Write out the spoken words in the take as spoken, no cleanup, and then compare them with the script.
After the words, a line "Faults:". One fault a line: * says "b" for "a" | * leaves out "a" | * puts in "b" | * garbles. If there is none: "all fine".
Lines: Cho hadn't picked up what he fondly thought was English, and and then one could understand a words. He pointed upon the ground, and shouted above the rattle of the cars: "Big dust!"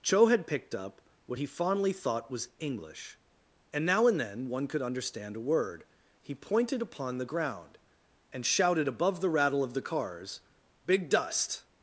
Cho had picked up what he fondly thought was English, and now and then one could understand a word. He pointed upon the ground, and shouted above the rattle of the cars: "Big dust!"
Faults:
* says "had" for "hadn't"
* puts in "now"
* says "word" for "words"